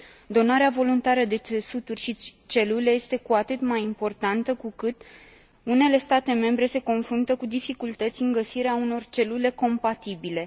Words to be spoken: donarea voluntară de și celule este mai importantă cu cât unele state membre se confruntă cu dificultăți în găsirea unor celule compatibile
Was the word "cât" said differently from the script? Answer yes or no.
no